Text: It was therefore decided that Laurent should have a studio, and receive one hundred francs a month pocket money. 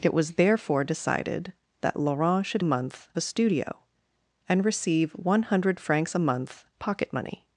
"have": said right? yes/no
no